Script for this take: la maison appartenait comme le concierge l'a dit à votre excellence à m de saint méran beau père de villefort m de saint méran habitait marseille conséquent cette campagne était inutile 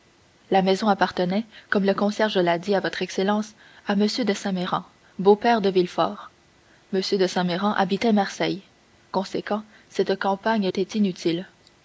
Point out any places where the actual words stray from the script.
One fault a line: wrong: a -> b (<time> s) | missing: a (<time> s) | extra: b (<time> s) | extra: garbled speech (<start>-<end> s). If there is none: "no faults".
no faults